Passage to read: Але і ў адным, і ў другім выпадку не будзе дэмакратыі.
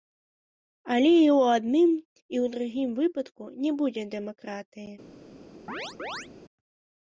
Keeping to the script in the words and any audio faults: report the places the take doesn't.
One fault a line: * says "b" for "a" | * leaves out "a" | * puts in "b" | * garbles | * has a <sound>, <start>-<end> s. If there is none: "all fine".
* has a chirp, 5.7-6.3 s